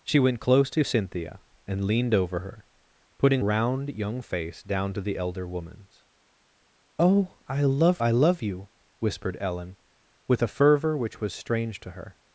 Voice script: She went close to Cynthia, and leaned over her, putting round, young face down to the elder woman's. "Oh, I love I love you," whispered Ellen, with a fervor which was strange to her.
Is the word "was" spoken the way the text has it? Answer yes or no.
yes